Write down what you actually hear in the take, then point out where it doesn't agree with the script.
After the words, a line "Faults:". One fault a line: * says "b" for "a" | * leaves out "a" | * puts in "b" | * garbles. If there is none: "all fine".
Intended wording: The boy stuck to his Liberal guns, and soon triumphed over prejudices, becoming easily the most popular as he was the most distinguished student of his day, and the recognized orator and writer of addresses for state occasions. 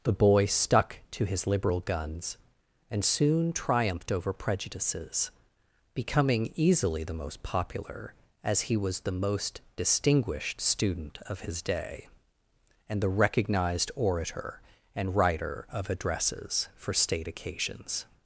The boy stuck to his Liberal guns, and soon triumphed over prejudices, becoming easily the most popular as he was the most distinguished student of his day, and the recognized orator and writer of addresses for state occasions.
Faults:
all fine